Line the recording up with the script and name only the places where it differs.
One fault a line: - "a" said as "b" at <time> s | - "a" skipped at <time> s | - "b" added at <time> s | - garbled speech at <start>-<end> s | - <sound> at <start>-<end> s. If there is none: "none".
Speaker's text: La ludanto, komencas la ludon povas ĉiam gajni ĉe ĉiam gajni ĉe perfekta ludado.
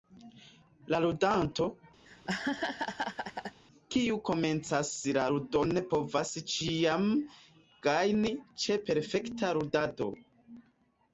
- laugh at 2.1-3.6 s
- "kiu" added at 4.0 s
- "ĉiam gajni ĉe" skipped at 8.8 s